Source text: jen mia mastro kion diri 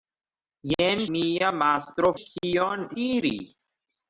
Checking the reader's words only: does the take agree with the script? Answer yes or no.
yes